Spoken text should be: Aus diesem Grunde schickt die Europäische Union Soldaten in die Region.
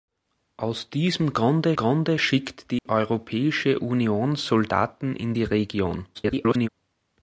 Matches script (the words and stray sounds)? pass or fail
fail